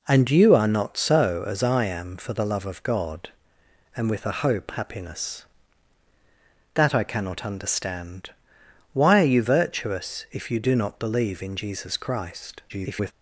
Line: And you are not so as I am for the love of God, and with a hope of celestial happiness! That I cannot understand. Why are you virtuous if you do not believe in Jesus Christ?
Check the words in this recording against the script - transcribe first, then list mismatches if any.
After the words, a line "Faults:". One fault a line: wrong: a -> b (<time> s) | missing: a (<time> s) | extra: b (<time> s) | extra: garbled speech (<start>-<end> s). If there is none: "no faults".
And you are not so as I am for the love of God, and with a hope happiness! That I cannot understand. Why are you virtuous if you do not believe in Jesus Christ? [garbled]
Faults:
missing: of celestial (4.7 s)
extra: garbled speech (12.7-13.1 s)